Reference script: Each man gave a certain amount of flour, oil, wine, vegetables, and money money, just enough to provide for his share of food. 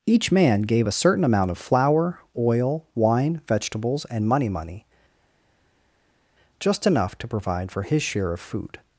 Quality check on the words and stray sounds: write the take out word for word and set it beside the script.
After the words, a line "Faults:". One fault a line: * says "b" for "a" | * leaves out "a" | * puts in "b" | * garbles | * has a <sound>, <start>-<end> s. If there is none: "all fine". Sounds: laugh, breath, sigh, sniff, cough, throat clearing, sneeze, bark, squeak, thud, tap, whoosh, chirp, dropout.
Each man gave a certain amount of flour, oil, wine, vegetables, and money money, just enough to provide for his share of food.
Faults:
all fine